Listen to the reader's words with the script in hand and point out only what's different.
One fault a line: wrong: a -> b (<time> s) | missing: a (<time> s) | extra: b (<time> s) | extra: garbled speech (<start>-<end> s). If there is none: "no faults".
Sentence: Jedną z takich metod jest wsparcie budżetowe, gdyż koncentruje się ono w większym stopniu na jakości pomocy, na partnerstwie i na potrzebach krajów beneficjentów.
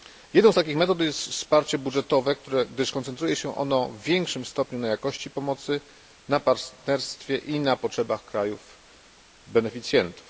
no faults